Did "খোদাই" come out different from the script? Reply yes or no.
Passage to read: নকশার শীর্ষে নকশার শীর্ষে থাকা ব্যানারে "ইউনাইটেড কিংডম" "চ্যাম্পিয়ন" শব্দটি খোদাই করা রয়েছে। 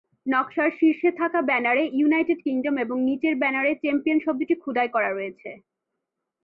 no